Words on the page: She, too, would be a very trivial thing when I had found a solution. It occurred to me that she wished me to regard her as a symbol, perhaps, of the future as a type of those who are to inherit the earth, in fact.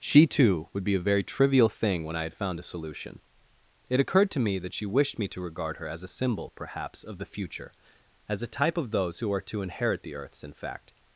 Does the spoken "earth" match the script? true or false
false